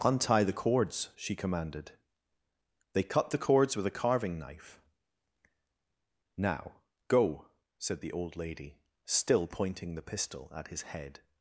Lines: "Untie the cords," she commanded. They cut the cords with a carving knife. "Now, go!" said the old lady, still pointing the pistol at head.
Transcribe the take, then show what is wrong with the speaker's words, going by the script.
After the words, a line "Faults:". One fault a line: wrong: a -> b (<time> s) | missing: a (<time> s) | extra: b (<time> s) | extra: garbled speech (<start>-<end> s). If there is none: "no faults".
"Untie the cords," she commanded. They cut the cords with a carving knife. "Now, go!" said the old lady, still pointing the pistol at his head.
Faults:
extra: his (10.7 s)